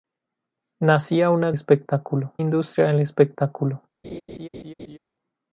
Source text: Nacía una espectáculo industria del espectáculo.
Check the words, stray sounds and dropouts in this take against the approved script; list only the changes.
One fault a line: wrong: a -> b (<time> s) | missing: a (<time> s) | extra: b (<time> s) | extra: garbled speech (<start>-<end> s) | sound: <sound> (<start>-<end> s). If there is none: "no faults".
sound: laugh (4.0-5.0 s)